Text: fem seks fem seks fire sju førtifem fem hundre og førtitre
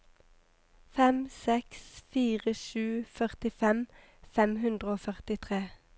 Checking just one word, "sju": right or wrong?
right